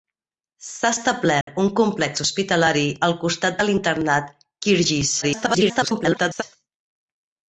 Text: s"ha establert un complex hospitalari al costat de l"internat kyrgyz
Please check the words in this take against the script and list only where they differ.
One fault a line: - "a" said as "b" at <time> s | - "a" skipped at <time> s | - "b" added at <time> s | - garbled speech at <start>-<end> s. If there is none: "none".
- garbled speech at 5.2-6.4 s